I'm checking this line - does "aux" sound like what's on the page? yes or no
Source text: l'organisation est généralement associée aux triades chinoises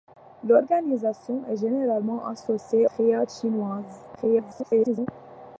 no